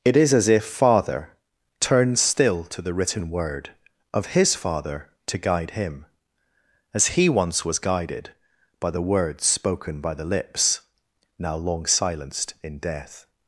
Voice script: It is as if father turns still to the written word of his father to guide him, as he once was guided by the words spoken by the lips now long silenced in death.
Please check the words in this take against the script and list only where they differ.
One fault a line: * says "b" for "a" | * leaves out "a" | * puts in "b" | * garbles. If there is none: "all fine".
all fine